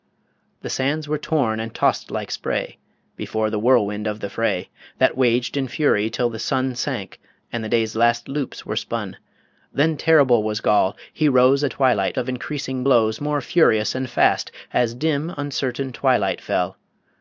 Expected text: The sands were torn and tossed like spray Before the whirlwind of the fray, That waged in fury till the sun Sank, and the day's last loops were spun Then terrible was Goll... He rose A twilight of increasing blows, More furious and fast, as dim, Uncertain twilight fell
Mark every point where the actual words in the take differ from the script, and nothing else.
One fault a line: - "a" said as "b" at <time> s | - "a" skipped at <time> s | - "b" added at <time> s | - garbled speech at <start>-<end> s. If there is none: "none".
none